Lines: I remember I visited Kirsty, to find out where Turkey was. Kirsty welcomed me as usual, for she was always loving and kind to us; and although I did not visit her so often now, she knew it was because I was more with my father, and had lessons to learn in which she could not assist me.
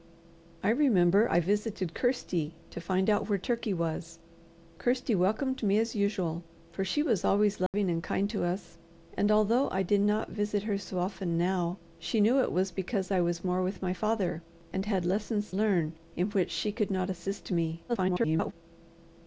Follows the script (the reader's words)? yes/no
no